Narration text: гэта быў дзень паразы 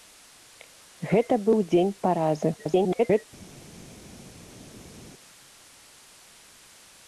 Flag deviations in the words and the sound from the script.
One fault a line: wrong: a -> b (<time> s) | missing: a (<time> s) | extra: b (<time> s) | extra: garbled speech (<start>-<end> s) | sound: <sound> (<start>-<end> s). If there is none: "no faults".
extra: garbled speech (2.6-3.3 s)